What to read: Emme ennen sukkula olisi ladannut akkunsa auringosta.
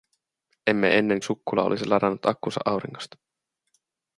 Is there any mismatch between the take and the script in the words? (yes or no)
no